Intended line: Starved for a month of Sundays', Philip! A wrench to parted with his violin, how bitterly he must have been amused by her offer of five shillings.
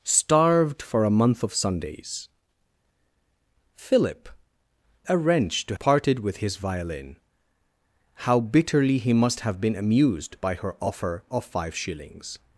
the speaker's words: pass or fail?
pass